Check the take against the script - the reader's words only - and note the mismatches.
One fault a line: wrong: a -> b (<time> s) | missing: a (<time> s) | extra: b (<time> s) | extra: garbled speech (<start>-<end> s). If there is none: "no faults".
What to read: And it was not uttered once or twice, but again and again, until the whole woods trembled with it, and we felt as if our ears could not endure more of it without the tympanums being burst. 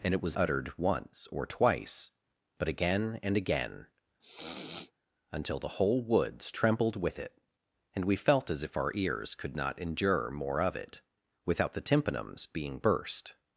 missing: not (0.4 s)